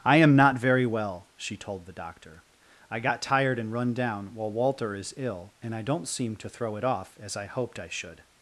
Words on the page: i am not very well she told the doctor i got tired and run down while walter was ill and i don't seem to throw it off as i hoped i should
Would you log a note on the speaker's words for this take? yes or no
yes